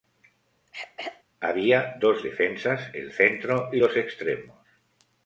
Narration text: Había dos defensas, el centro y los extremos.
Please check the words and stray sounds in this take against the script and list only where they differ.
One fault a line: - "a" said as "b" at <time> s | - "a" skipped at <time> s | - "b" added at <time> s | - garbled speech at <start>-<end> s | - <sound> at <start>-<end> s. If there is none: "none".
- throat clearing at 0.7-1.2 s